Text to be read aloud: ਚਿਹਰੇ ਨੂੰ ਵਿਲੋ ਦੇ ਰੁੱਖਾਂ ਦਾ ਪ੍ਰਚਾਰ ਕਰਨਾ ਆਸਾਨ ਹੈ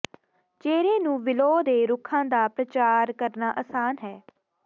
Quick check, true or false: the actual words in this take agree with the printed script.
true